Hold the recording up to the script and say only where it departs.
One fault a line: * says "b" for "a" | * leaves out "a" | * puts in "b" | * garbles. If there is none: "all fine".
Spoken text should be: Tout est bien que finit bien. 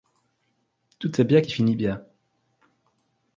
* says "qui" for "que"